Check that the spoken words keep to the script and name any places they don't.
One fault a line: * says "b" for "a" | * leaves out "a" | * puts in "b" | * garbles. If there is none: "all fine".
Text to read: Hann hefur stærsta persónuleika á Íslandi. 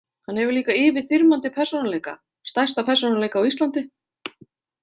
* puts in "líka yfirþyrmandi persónuleika"